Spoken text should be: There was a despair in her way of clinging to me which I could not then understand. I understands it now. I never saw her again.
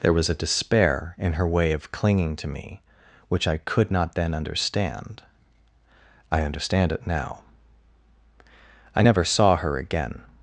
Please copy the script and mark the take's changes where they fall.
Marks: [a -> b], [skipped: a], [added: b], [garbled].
There was a despair in her way of clinging to me which I could not then understand. I [understands -> understand] it now. I never saw her again.